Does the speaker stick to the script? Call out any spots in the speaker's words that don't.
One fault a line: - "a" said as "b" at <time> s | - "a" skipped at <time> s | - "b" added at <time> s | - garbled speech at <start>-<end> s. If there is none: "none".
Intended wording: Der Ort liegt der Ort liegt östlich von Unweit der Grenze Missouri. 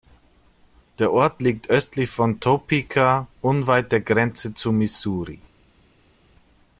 - "der Ort liegt" skipped at 1.7 s
- "Topeka" added at 2.4 s
- "zu" added at 4.5 s